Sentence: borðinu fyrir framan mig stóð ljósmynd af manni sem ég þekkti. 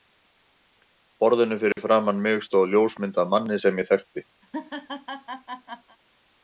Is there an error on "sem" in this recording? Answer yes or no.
no